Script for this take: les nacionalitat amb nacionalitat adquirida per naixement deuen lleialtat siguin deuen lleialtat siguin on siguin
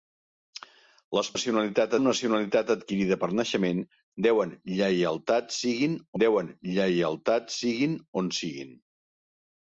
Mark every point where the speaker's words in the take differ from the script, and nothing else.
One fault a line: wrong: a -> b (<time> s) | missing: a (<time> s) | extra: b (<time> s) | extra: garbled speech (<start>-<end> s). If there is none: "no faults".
no faults